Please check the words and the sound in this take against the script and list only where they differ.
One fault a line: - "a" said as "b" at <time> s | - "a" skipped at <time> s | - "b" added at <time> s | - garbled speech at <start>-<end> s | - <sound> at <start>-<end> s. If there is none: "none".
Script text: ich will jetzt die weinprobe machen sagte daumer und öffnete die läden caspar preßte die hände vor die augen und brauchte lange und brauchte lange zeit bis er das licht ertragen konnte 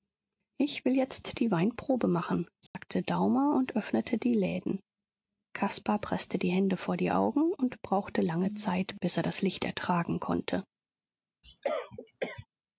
- dropout at 2.7-2.7 s
- "und brauchte lange" skipped at 8.5 s
- cough at 11.4-12.5 s